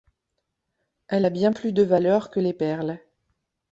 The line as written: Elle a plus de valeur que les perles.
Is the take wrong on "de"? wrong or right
right